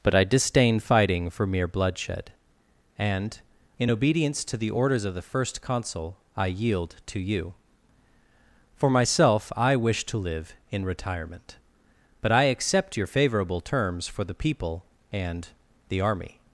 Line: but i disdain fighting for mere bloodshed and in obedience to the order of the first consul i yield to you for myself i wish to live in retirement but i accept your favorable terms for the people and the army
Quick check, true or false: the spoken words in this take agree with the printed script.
false